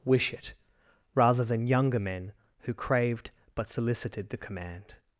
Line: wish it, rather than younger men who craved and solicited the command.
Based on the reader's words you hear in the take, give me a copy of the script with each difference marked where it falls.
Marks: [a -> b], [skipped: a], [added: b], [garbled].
wish it, rather than younger men who craved [and -> but] solicited the command.